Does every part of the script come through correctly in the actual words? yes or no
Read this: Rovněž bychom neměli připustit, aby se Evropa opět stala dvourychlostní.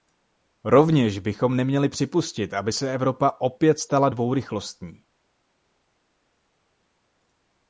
yes